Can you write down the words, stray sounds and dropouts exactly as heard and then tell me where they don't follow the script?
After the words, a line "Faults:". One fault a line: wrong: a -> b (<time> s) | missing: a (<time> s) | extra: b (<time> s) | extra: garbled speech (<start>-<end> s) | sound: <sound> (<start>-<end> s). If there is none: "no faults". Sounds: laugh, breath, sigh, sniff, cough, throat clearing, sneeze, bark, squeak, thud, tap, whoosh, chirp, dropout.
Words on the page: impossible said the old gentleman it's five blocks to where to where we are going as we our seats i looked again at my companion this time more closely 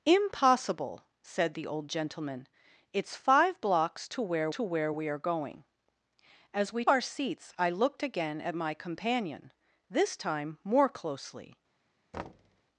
impossible said the old gentleman it's five blocks to where to where we are going as we our seats i looked again at my companion this time more closely
Faults:
sound: thud (12.1-12.6 s)